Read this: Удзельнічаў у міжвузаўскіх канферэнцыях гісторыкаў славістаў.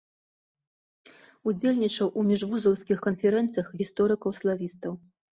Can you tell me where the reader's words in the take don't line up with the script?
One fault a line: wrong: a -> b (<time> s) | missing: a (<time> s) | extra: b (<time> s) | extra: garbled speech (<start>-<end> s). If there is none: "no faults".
no faults